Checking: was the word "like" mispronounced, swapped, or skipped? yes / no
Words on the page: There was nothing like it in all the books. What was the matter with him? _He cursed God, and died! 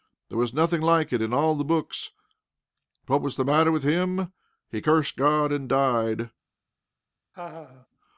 no